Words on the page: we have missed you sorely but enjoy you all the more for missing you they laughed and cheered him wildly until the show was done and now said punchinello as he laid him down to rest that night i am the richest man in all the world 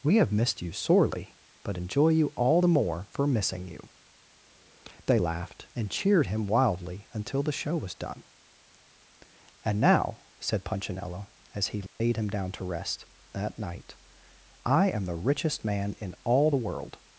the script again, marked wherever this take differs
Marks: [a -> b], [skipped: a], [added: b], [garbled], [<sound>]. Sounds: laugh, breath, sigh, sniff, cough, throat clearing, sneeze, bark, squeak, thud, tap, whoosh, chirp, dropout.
we have missed you sorely but enjoy you all the more for missing you they laughed and cheered him wildly until the show was done and now said punchinello as he laid [dropout] him down to rest that night i am the richest man in all the world